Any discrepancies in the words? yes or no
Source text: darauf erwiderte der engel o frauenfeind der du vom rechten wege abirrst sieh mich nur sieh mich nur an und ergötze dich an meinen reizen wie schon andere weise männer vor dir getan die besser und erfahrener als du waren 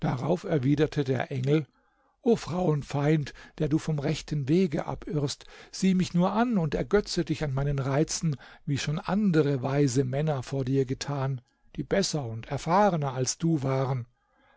yes